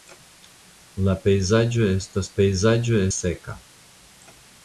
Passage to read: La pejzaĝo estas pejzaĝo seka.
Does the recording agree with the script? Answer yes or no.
yes